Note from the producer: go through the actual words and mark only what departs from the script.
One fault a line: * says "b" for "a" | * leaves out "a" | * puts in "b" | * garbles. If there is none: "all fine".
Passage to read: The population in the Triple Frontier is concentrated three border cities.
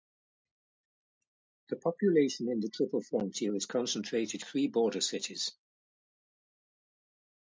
all fine